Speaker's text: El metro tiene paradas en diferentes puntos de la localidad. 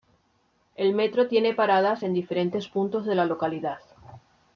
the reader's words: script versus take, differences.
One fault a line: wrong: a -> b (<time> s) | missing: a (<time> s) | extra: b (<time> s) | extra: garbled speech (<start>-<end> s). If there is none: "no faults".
no faults